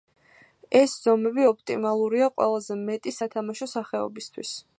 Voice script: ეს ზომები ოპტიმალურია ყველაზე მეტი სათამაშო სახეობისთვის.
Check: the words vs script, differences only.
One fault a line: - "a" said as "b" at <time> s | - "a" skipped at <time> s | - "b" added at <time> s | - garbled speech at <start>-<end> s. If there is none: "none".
none